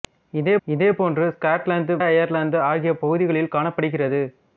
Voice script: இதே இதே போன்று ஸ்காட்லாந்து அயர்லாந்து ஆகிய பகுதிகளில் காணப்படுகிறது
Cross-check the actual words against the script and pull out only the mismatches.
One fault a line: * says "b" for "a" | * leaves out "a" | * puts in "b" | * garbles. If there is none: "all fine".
all fine